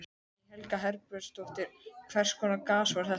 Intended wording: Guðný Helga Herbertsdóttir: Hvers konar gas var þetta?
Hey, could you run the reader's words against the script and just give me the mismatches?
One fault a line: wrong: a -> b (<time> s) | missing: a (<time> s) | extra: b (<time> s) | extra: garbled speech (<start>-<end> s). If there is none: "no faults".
no faults